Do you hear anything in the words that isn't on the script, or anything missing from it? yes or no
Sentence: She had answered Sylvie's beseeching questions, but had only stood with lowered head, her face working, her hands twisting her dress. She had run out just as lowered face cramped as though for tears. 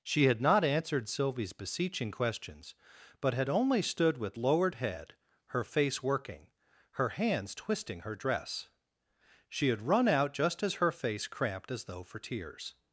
yes